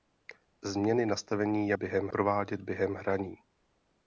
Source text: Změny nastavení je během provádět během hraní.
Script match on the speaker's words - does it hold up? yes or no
yes